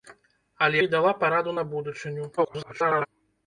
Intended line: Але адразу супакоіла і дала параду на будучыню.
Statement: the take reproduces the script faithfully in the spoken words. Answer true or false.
false